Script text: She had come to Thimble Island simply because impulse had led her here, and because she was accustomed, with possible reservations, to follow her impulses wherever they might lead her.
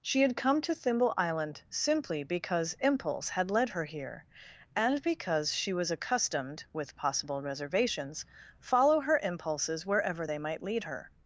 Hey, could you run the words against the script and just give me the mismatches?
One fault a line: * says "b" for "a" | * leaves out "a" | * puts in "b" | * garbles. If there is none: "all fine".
* leaves out "to"